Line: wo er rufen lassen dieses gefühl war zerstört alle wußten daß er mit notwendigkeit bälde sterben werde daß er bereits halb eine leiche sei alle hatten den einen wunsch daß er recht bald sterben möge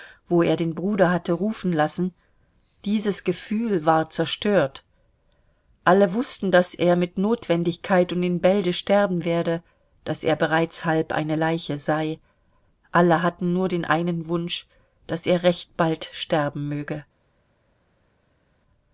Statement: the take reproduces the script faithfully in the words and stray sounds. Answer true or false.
false